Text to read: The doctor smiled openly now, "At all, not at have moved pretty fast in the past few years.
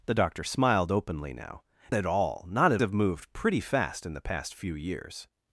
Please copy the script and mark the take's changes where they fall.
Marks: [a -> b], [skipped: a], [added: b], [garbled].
The doctor smiled openly now, "At all, not at have moved pretty fast in the past few years.